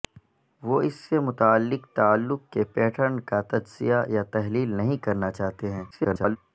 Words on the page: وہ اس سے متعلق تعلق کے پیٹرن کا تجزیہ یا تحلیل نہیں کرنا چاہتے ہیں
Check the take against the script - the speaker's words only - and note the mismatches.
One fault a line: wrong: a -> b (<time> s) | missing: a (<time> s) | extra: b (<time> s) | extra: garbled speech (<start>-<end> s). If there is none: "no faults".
extra: garbled speech (5.9-6.4 s)